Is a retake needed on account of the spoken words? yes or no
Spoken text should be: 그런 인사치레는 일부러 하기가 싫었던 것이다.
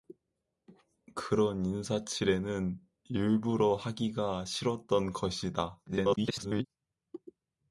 yes